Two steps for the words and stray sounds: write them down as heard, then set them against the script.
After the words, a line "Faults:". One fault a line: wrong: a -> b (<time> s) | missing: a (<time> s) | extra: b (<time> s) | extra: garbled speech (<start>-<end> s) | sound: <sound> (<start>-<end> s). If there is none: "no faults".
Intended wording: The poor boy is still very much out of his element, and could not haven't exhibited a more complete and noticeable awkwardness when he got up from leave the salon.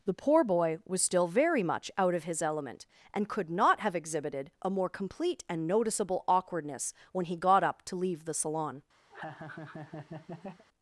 The poor boy was still very much out of his element, and could not have exhibited a more complete and noticeable awkwardness when he got up to leave the salon.
Faults:
wrong: is -> was (0.8 s)
wrong: haven't -> have (3.8 s)
wrong: from -> to (7.8 s)
sound: laugh (9.1-10.6 s)